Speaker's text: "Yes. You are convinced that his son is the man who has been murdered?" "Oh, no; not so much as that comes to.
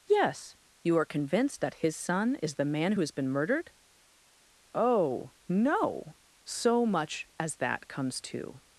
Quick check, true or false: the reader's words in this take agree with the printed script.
false